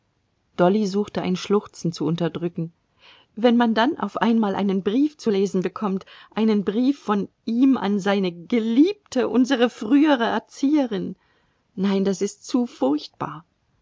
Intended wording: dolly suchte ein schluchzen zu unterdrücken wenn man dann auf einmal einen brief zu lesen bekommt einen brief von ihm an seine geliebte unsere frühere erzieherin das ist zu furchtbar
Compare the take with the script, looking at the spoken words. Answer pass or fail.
fail